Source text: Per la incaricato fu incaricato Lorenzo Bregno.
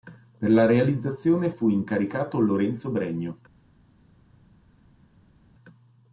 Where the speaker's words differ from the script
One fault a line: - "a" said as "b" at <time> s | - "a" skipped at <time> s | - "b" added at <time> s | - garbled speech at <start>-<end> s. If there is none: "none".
- "incaricato" said as "realizzazione" at 0.7 s